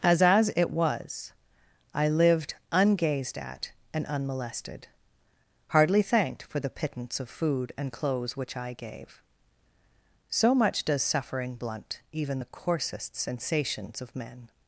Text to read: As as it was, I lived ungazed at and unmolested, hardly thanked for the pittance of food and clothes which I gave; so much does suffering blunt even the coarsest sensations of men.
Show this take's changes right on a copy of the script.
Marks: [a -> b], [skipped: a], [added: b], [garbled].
As as it was, I lived ungazed at and unmolested, hardly thanked for the pittance of food and clothes which I gave; so much does suffering blunt even the coarsest sensations of men.